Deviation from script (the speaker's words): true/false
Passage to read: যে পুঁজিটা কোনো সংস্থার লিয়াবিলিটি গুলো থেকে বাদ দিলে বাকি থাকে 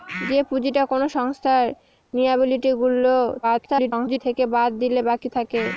true